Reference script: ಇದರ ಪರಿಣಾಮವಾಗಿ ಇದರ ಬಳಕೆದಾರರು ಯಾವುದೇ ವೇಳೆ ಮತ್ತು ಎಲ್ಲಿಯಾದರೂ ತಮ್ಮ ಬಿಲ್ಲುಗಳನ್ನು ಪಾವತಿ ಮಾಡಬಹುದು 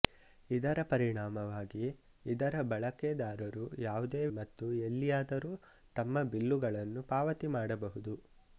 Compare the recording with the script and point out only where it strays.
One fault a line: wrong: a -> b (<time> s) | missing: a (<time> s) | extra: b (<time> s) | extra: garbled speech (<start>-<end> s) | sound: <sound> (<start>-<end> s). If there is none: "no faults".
missing: ವೇಳೆ (4.2 s)